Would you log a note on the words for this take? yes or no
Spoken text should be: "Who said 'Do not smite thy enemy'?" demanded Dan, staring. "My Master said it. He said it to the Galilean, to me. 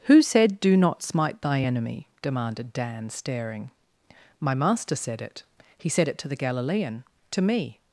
no